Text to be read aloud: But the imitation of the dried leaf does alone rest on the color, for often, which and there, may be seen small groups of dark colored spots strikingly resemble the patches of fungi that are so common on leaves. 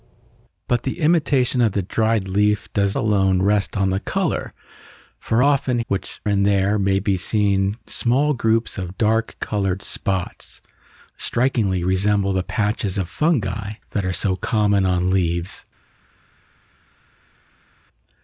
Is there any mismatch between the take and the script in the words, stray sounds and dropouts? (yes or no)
no